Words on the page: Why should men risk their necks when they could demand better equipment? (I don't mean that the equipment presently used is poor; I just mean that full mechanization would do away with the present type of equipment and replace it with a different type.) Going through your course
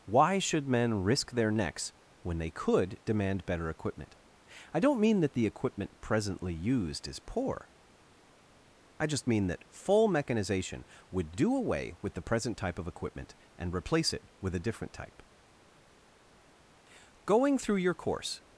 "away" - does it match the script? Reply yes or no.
yes